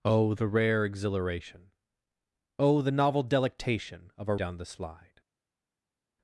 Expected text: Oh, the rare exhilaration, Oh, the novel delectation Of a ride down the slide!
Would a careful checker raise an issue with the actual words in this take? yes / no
yes